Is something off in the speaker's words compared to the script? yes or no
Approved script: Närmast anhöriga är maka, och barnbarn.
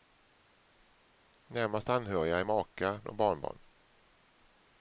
no